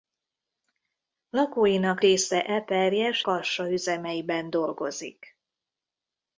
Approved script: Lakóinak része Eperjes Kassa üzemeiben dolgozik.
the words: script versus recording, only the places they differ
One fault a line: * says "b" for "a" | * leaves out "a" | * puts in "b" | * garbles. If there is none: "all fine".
all fine